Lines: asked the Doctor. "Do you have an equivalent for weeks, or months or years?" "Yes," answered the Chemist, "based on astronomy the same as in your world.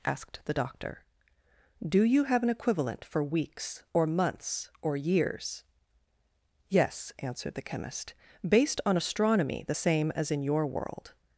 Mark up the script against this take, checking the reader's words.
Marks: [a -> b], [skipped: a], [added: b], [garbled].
asked the Doctor. "Do you have an equivalent for weeks, or months or years?" "Yes," answered the Chemist, "based on astronomy the same as in your world.